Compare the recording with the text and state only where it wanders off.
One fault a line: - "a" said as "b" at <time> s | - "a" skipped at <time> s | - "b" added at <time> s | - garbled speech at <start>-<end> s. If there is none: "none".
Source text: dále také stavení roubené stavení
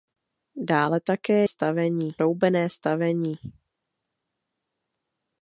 none